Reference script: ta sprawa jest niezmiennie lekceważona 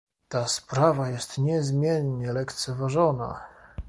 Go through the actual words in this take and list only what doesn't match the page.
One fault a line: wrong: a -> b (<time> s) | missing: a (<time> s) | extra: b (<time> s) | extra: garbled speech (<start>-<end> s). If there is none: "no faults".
no faults